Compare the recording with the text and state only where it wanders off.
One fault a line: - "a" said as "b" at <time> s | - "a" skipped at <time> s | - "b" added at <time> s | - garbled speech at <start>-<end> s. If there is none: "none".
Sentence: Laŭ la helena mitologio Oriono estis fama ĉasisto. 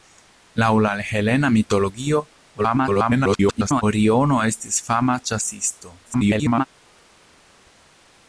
- garbled speech at 2.6-3.8 s
- garbled speech at 6.1-6.7 s